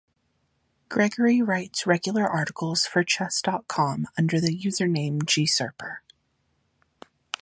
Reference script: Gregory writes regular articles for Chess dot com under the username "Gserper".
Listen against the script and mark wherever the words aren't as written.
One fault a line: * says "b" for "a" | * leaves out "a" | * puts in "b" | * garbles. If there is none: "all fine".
all fine